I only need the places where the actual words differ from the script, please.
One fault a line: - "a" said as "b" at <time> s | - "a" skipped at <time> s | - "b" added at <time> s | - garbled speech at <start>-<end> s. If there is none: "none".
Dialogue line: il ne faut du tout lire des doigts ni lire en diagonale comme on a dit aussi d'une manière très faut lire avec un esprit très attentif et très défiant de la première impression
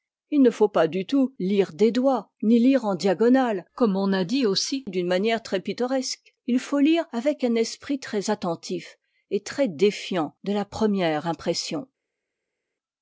- "pas" added at 0.7 s
- "pittoresque il" added at 5.6 s